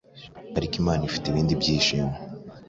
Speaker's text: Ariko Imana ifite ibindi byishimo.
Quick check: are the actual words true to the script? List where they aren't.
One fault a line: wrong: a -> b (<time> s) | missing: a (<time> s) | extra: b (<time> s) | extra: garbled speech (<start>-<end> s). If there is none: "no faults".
no faults